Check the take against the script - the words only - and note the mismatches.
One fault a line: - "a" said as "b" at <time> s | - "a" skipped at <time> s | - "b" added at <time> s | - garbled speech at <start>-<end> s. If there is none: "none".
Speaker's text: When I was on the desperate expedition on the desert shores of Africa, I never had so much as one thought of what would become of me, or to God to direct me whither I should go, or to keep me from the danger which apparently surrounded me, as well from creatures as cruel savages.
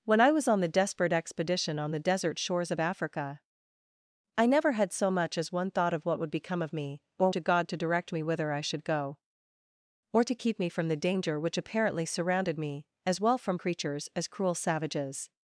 none